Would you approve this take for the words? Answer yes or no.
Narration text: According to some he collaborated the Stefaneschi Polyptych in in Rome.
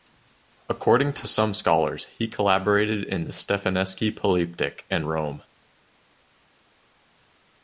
no